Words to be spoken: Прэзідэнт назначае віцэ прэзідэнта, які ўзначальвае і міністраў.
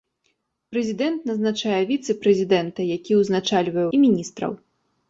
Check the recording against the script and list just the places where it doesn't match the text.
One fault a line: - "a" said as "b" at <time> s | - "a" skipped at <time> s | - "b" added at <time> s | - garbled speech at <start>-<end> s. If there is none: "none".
none